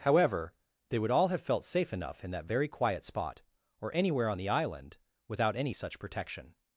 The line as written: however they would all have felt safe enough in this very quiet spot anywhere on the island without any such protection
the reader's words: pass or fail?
fail